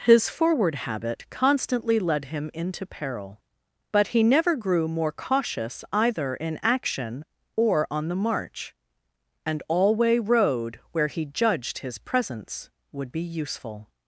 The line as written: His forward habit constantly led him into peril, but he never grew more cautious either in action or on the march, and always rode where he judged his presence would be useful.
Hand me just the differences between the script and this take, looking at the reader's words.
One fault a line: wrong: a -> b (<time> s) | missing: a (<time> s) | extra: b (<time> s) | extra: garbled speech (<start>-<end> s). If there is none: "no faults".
wrong: always -> alway (9.7 s)